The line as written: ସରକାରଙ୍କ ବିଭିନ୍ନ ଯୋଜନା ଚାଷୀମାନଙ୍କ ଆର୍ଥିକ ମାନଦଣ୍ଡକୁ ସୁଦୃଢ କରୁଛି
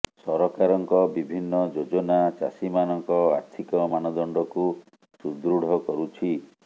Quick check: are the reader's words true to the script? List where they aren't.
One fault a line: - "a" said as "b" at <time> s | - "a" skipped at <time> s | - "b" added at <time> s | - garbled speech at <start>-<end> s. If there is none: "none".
none